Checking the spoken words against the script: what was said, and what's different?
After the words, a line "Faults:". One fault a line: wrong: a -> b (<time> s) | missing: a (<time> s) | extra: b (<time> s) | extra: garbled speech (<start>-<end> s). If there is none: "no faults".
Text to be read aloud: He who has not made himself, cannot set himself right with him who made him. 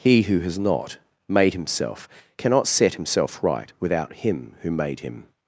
He who has not made himself, cannot set himself right without him who made him.
Faults:
wrong: with -> without (3.8 s)